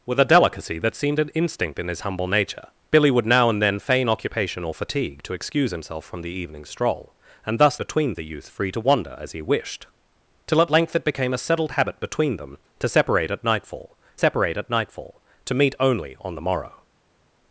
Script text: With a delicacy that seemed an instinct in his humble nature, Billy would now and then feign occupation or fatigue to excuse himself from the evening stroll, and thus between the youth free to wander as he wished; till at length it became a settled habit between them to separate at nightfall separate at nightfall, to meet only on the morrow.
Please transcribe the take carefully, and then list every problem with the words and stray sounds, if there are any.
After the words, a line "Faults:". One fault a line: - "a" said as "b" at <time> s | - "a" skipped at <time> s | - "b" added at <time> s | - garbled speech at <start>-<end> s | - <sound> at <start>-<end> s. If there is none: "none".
With a delicacy that seemed an instinct in his humble nature, Billy would now and then feign occupation or fatigue to excuse himself from the evening stroll, and thus between the youth free to wander as he wished; till at length it became a settled habit between them to separate at nightfall separate at nightfall, to meet only on the morrow.
Faults:
none